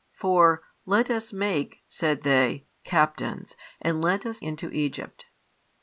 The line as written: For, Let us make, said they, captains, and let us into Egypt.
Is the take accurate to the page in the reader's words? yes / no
yes